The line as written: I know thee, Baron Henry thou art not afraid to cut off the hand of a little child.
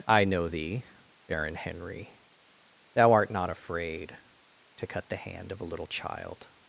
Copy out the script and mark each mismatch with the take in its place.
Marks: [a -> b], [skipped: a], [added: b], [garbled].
I know thee, Baron Henry thou art not afraid to cut [skipped: off] the hand of a little child.